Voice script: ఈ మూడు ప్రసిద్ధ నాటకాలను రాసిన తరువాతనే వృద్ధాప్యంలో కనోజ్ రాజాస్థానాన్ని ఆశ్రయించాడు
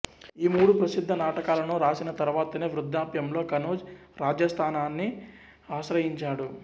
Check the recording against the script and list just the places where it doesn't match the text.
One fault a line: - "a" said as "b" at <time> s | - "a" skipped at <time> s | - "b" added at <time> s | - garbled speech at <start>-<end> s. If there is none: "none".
none